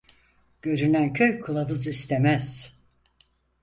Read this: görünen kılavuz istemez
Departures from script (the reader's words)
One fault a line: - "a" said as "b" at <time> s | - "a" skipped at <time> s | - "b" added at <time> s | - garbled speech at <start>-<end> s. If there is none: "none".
- "köy" added at 1.1 s